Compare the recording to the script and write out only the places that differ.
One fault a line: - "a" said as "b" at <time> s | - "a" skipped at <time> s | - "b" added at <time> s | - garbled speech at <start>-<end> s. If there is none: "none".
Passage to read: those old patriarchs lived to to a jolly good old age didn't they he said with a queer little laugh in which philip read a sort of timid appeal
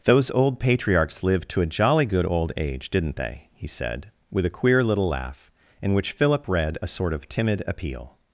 - "to" skipped at 1.6 s